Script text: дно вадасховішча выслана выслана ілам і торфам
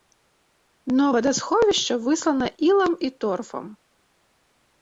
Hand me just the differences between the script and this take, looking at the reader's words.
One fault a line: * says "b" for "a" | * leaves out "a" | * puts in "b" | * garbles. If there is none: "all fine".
* leaves out "выслана"